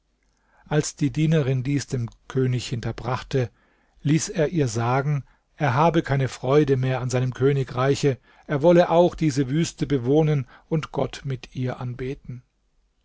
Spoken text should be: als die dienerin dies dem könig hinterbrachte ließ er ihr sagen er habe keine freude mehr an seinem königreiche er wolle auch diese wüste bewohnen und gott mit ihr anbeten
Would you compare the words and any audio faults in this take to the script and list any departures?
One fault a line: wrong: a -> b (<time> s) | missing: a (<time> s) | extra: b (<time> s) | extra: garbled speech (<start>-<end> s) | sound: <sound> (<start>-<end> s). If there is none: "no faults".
no faults